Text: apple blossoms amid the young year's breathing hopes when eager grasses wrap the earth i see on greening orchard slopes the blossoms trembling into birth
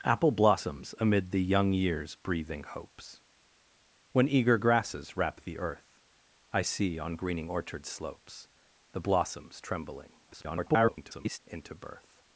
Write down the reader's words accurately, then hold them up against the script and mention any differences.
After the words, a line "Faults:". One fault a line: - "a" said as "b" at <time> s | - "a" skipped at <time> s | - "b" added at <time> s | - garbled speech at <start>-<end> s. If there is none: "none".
apple blossoms amid the young year's breathing hopes when eager grasses wrap the earth i see on greening orchard slopes the blossoms trembling [garbled] into birth
Faults:
- garbled speech at 10.3-11.4 s